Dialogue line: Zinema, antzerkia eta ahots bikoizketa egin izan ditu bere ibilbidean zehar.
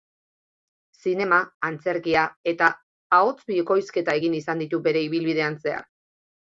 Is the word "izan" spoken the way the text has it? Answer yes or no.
yes